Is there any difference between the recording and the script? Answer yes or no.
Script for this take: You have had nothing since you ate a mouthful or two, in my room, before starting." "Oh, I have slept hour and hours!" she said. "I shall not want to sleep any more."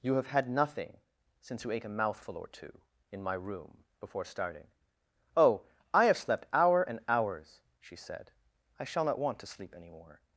no